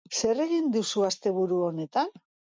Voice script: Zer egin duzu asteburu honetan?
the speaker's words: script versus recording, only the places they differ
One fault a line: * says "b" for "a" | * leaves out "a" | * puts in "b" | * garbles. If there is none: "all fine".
all fine